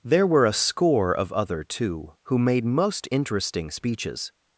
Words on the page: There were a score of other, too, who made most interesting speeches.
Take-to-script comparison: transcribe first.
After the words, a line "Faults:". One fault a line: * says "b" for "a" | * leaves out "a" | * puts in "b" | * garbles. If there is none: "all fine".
There were a score of other, too, who made most interesting speeches.
Faults:
all fine